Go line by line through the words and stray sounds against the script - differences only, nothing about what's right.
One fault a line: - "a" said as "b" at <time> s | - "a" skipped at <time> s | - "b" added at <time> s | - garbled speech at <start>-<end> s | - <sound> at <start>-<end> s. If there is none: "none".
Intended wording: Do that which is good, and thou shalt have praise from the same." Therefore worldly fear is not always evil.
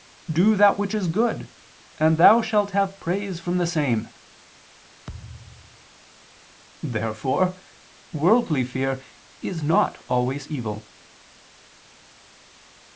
- thud at 5.1-5.9 s